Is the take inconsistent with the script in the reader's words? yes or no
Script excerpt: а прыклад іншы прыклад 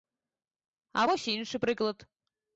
yes